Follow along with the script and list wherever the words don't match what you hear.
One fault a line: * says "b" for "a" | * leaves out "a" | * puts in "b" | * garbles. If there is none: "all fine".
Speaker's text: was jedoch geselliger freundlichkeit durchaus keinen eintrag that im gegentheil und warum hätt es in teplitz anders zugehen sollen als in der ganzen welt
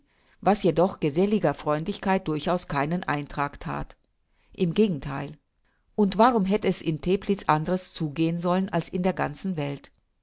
all fine